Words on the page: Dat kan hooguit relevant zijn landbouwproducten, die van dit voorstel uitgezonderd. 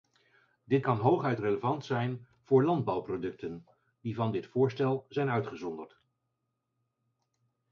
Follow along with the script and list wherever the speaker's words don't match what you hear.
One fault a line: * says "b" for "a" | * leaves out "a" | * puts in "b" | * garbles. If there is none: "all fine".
* says "Dit" for "Dat"
* puts in "voor"
* puts in "zijn"